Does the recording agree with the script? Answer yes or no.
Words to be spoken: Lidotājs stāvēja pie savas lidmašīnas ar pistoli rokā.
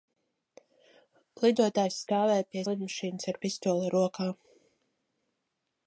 no